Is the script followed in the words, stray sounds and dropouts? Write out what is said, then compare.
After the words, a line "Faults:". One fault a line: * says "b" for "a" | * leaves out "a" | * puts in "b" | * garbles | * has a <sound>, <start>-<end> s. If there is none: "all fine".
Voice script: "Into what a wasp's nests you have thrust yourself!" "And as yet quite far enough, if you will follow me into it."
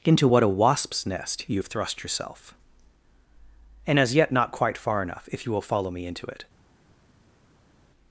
"Into what a wasp's nest you have thrust yourself!" "And as yet not quite far enough, if you will follow me into it."
Faults:
* says "nest" for "nests"
* puts in "not"